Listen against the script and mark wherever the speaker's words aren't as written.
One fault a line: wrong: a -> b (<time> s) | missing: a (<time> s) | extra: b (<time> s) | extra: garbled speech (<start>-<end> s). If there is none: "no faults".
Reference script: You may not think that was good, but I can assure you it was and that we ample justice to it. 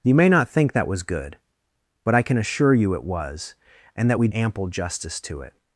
no faults